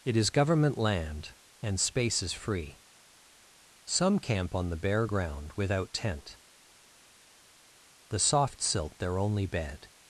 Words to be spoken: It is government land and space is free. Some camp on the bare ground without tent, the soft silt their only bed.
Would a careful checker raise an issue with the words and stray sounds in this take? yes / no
no